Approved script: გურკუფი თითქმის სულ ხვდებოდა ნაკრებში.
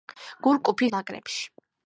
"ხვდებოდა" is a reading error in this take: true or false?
true